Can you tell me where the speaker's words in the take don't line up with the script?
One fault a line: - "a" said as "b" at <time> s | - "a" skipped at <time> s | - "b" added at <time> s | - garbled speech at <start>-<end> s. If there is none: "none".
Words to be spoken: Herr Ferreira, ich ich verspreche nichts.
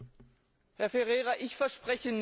- "ich" skipped at 1.5 s